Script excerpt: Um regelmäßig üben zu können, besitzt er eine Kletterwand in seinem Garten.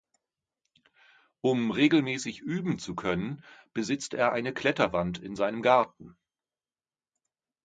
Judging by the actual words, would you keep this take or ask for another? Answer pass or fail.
pass